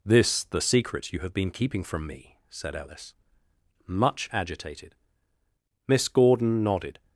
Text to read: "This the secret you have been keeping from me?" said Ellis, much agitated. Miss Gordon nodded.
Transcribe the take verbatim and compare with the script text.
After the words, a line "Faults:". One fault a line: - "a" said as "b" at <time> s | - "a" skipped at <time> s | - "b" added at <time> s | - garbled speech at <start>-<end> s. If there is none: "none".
"This the secret you have been keeping from me?" said Ellis, much agitated. Miss Gordon nodded.
Faults:
none